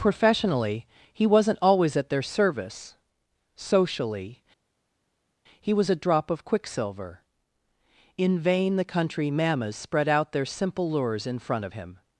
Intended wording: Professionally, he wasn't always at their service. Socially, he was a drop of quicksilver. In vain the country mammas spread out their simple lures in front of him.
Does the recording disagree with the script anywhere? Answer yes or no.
no